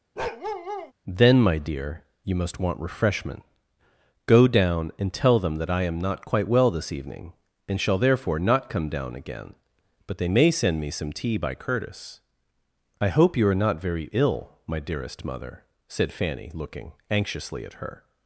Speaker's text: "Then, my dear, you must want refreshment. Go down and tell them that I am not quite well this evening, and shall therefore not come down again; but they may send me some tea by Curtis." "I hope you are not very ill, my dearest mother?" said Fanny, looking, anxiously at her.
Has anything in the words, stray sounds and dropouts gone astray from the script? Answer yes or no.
yes